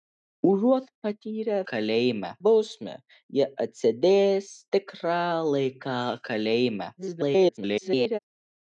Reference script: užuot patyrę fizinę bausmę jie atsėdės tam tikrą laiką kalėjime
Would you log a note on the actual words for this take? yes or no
yes